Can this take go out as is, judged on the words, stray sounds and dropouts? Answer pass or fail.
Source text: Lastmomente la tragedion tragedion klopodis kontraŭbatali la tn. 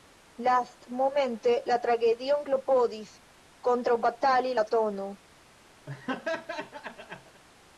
fail